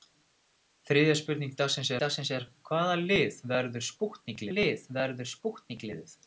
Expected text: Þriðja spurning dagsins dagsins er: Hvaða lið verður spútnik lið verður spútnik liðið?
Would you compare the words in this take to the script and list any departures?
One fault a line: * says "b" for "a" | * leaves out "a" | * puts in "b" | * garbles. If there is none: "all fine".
all fine